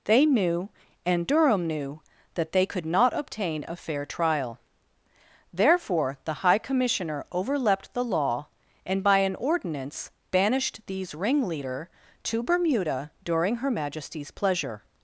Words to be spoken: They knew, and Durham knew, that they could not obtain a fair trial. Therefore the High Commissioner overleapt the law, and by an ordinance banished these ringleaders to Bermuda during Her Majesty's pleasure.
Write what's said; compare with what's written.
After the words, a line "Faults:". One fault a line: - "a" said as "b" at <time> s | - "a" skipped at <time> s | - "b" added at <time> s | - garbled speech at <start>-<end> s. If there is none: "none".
They knew, and Durham knew, that they could not obtain a fair trial. Therefore the High Commissioner overleapt the law, and by an ordinance banished these ringleader to Bermuda during Her Majesty's pleasure.
Faults:
- "ringleaders" said as "ringleader" at 11.1 s